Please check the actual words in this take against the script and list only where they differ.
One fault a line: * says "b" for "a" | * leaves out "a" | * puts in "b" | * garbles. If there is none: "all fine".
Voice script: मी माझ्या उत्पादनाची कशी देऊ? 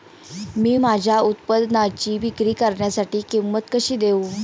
* puts in "विक्री करण्यासाठी किंमत"